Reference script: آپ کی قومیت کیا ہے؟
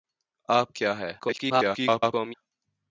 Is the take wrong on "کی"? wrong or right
wrong